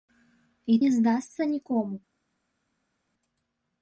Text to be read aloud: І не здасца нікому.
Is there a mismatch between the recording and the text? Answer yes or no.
no